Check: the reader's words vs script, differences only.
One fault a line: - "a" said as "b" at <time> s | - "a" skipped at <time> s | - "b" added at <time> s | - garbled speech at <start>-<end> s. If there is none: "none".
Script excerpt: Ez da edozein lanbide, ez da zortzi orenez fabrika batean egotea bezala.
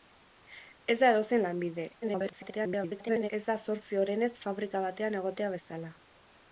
- garbled speech at 2.0-3.3 s